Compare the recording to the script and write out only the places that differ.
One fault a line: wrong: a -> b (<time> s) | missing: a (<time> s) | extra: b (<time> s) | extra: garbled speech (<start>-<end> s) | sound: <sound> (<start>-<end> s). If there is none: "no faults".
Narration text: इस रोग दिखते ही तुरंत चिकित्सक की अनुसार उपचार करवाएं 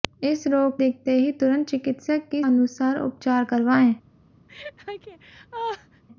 sound: laugh (4.5-6.0 s)